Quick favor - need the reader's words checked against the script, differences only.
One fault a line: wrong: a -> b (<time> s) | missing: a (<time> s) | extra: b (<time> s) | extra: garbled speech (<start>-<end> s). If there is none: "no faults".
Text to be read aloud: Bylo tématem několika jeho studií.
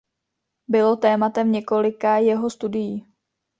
no faults